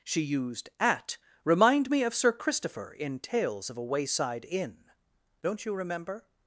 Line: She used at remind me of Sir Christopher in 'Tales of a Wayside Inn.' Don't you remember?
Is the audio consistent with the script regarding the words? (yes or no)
yes